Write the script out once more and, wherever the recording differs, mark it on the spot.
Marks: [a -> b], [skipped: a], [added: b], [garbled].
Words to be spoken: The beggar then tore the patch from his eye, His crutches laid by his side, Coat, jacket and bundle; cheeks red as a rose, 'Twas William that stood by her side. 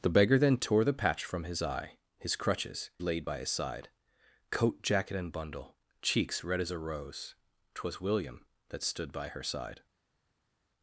The beggar then tore the patch from his eye, His crutches laid by his side, Coat, jacket and bundle; cheeks red as a rose, 'Twas William that stood by her side.